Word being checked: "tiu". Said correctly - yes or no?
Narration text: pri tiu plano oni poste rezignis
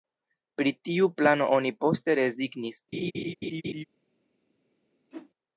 yes